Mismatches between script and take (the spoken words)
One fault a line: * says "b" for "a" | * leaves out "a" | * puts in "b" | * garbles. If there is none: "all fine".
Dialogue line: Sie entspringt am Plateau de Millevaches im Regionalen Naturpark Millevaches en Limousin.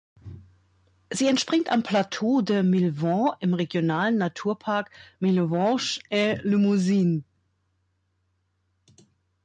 all fine